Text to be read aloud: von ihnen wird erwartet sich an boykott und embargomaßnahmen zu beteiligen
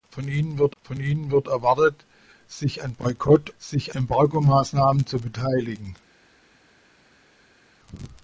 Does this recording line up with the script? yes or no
no